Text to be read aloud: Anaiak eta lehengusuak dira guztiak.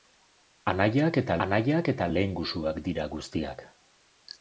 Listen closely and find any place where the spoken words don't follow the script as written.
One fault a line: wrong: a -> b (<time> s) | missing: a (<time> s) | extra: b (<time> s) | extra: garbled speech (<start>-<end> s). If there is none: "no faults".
extra: anaiak eta (1.5 s)